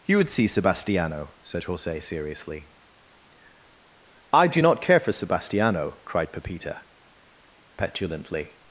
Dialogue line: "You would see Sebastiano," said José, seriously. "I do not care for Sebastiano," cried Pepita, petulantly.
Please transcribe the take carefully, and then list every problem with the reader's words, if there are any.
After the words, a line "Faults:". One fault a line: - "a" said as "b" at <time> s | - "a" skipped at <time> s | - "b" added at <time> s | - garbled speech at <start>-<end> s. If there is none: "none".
"You would see Sebastiano," said José, seriously. "I do not care for Sebastiano," cried Pepita, petulantly.
Faults:
none